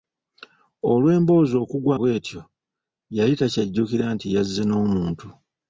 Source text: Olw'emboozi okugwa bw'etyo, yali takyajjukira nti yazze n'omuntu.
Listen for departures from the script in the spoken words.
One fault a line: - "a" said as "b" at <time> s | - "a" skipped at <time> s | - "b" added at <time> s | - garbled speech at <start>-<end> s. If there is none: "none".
none